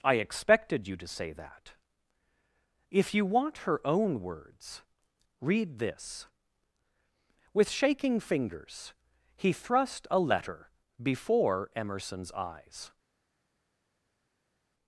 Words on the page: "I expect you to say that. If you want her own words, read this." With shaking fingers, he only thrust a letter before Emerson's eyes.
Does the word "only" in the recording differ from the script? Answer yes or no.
yes